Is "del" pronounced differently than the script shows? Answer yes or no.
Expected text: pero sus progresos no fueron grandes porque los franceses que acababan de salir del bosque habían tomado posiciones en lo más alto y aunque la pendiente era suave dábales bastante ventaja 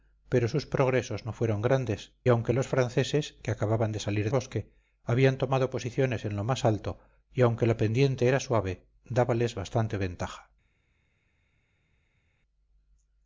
yes